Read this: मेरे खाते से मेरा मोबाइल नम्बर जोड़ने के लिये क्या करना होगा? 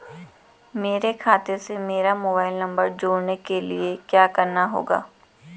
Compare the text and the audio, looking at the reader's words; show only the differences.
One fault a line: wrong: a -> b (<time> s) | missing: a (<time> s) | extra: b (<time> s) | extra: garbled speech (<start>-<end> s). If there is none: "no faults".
no faults